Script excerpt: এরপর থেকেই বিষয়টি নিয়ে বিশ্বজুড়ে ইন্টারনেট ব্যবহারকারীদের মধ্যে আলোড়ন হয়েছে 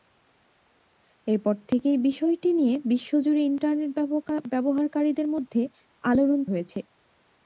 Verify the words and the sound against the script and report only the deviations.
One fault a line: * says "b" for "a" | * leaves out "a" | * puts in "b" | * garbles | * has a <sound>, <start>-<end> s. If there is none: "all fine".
all fine